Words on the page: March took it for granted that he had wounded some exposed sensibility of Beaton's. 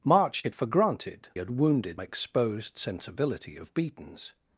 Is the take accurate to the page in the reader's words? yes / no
no